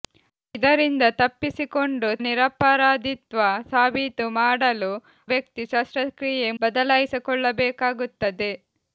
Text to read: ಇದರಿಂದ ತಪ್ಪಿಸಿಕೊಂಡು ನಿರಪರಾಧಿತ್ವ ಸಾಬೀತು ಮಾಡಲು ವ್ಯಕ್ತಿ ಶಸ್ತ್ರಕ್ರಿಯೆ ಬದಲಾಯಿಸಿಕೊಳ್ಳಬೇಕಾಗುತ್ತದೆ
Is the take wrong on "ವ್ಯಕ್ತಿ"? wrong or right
right